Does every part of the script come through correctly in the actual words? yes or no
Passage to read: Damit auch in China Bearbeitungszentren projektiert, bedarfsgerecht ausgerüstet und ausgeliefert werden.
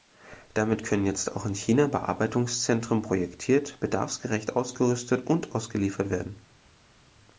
no